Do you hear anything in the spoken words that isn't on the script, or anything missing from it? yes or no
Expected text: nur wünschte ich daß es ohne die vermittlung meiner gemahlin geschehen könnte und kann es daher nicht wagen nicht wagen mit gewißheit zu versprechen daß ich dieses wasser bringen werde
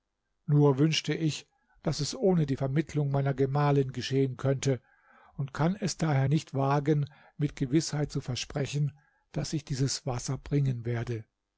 yes